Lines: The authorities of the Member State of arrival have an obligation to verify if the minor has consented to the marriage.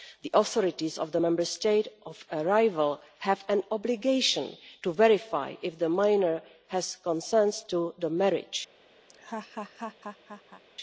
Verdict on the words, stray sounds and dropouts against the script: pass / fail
fail